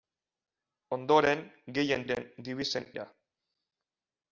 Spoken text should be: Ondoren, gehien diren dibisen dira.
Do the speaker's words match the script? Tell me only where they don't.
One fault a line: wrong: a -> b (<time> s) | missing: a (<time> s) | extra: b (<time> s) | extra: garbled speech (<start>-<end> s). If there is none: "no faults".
no faults